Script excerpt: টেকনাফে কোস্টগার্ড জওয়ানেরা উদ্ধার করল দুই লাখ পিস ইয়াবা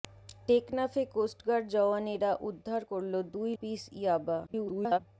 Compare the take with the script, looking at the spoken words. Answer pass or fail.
fail